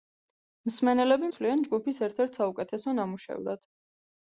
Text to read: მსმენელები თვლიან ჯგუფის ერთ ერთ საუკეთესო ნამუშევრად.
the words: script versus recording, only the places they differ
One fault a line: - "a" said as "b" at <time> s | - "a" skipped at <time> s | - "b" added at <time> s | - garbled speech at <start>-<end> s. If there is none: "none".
none